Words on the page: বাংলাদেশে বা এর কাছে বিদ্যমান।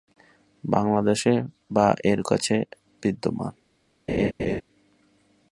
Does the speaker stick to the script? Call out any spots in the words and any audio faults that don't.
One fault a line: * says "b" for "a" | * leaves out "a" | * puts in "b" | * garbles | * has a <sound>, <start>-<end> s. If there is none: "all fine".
* has a laugh, 4.1-4.6 s